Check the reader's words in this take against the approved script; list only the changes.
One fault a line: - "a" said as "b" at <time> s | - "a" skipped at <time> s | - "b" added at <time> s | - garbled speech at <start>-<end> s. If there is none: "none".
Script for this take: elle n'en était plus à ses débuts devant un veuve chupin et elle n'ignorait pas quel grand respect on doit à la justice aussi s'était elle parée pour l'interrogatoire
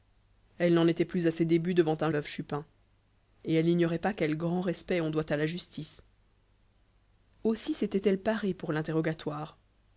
none